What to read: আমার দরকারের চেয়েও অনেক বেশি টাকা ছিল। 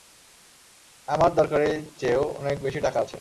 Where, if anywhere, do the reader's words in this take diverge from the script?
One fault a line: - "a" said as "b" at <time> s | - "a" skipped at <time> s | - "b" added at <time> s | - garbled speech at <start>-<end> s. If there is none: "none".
- "ছিল" said as "আছে" at 3.0 s